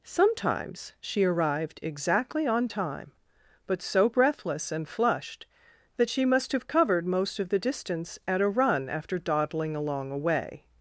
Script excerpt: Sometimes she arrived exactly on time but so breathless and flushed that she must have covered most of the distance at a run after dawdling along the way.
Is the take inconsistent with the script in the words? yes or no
yes